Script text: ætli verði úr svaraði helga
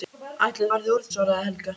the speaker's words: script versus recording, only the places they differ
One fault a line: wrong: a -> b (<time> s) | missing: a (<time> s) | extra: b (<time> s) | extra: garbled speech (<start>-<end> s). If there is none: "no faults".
no faults